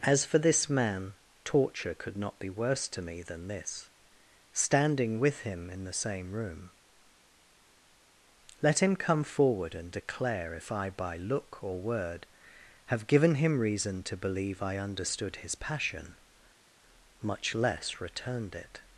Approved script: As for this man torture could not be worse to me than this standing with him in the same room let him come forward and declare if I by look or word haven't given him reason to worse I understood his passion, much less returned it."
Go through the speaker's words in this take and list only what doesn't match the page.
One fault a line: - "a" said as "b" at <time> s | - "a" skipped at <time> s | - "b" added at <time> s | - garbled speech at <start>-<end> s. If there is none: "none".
- "haven't" said as "have" at 12.9 s
- "worse" said as "believe" at 14.2 s